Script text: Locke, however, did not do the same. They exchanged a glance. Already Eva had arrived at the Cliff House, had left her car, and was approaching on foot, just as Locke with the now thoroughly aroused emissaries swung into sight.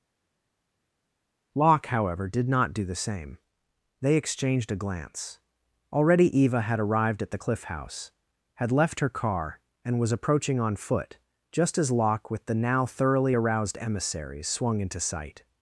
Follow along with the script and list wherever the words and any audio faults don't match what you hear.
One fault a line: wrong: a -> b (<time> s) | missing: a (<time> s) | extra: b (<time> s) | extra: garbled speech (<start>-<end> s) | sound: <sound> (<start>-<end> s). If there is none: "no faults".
no faults